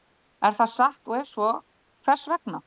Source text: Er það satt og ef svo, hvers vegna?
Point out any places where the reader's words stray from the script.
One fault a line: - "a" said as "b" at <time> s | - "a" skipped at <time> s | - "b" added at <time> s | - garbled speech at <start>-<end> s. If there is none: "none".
none